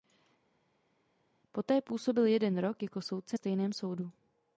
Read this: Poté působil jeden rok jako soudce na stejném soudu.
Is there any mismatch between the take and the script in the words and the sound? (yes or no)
yes